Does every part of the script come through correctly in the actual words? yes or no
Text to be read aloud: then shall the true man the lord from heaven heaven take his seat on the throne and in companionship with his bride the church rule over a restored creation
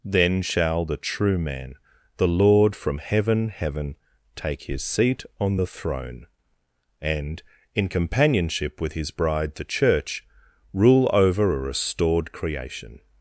yes